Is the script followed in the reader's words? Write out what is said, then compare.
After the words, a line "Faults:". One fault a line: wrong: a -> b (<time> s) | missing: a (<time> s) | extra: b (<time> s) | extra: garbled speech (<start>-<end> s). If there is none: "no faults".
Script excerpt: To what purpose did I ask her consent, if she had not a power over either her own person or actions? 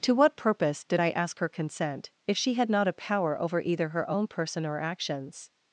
To what purpose did I ask her consent, if she had not a power over either her own person or actions?
Faults:
no faults